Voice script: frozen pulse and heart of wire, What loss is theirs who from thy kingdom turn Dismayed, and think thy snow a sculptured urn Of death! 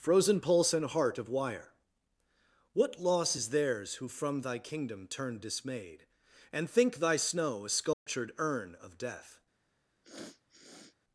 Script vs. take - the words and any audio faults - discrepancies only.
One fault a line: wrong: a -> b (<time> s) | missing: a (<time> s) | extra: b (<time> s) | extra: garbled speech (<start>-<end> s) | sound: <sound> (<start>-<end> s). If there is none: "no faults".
sound: dropout (7.9-8.1 s)
sound: sniff (10.0-11.0 s)